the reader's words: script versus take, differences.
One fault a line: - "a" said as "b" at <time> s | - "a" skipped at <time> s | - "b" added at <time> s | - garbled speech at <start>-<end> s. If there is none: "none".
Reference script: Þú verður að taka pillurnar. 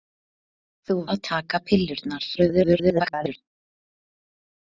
- "verður" skipped at 0.9 s
- garbled speech at 2.4-3.4 s